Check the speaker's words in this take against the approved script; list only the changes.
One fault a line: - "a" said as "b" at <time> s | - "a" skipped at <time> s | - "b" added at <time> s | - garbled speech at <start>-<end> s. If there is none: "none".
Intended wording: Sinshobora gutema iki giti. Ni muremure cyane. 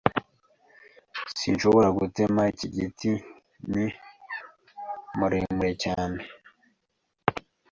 none